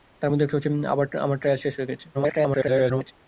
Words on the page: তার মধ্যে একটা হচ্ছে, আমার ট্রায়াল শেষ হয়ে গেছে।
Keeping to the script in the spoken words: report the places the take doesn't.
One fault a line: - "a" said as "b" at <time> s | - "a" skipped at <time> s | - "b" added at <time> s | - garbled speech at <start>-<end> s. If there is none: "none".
- garbled speech at 2.1-3.1 s